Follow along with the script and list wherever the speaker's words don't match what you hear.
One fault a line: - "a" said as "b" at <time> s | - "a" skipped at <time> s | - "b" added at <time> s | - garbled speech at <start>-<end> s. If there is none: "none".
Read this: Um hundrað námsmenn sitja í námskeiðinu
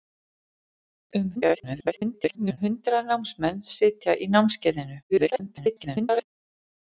- garbled speech at 1.4-2.6 s
- garbled speech at 5.1-6.3 s